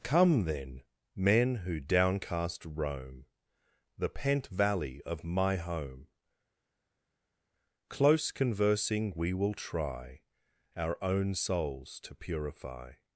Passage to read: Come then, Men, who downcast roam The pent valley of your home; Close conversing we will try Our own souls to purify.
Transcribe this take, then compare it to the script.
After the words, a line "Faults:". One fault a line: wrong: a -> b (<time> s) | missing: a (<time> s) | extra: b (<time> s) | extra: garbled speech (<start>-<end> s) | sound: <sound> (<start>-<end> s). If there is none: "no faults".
Come then, Men, who downcast roam The pent valley of my home; Close conversing we will try Our own souls to purify.
Faults:
wrong: your -> my (5.2 s)